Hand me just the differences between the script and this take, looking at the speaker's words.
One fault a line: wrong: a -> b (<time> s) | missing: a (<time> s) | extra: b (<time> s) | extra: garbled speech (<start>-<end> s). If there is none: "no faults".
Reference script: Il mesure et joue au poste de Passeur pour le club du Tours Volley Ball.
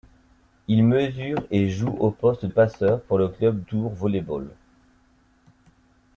missing: de (2.5 s)
missing: du (3.6 s)